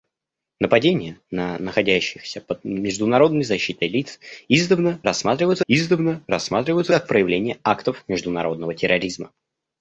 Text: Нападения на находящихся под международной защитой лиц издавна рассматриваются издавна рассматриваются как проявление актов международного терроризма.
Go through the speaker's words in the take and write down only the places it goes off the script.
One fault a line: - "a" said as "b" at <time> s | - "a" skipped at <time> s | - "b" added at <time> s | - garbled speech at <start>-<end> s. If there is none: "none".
none